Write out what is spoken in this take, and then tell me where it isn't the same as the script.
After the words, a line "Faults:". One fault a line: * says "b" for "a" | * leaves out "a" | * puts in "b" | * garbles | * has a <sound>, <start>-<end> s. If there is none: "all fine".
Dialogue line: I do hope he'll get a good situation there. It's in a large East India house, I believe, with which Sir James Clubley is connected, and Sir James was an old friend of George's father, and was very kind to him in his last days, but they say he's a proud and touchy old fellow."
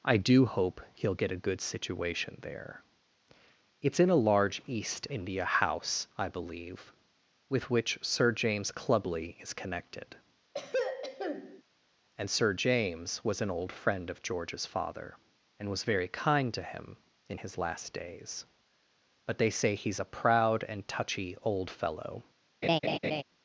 I do hope he'll get a good situation there. It's in a large East India house, I believe, with which Sir James Clubley is connected, and Sir James was an old friend of George's father, and was very kind to him in his last days, but they say he's a proud and touchy old fellow."
Faults:
* has a throat clearing, 10.5-11.6 s
* has a laugh, 22.6-23.2 s